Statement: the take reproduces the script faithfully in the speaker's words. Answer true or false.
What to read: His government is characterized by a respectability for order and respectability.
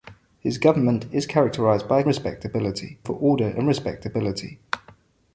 true